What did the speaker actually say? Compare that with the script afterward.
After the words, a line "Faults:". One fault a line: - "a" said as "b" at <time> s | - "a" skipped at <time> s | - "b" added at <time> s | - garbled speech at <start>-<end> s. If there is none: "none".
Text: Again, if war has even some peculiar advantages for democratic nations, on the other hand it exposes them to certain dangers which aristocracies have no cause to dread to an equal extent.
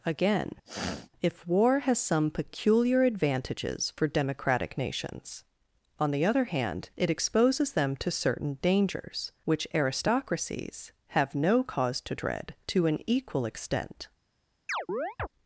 Again, if war has some peculiar advantages for democratic nations, on the other hand it exposes them to certain dangers which aristocracies have no cause to dread to an equal extent.
Faults:
- "even" skipped at 2.0 s